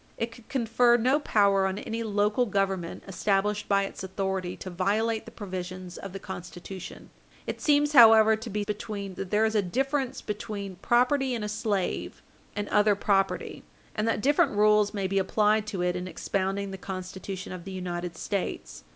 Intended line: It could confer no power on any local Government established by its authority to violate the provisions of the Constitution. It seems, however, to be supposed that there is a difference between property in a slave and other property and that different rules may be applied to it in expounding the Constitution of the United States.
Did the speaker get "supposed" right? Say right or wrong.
wrong